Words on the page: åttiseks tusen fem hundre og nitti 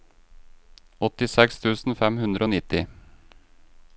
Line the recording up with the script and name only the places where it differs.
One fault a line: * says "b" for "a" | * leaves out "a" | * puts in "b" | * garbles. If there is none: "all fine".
all fine